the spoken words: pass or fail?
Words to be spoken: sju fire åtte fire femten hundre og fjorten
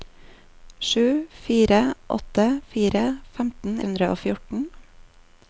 pass